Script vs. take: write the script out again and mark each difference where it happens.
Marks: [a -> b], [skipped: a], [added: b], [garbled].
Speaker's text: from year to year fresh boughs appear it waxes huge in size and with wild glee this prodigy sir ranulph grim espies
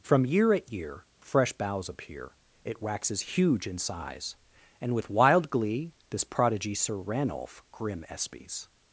from year [to -> at] year fresh boughs appear it waxes huge in size and with wild glee this prodigy sir ranulph grim espies